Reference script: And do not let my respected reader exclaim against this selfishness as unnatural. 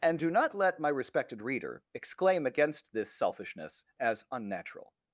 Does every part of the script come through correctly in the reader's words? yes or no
yes